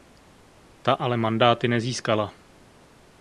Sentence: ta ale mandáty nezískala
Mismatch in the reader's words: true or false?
false